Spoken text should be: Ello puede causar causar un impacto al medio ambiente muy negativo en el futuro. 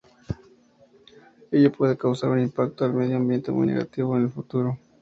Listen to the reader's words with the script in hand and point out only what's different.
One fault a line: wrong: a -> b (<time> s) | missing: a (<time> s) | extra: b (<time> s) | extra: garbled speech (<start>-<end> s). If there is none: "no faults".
missing: causar (2.3 s)